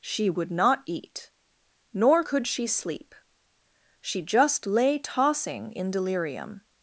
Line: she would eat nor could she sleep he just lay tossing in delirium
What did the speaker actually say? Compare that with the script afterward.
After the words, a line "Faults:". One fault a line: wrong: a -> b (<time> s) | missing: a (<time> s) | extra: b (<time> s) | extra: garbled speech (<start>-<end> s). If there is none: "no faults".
she would not eat nor could she sleep she just lay tossing in delirium
Faults:
extra: not (0.5 s)
wrong: he -> she (4.0 s)